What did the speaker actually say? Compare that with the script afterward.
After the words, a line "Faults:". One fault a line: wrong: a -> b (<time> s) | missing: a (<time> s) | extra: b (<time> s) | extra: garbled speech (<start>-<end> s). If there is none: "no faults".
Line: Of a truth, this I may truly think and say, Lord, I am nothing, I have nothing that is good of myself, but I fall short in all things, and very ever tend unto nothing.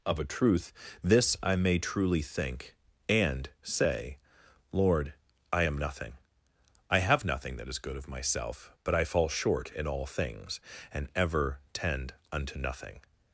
Of a truth, this I may truly think and say, Lord, I am nothing, I have nothing that is good of myself, but I fall short in all things, and ever tend unto nothing.
Faults:
missing: very (11.1 s)